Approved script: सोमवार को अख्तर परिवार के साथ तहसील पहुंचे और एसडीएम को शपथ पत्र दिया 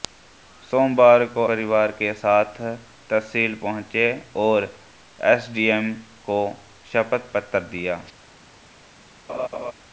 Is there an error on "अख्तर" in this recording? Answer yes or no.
yes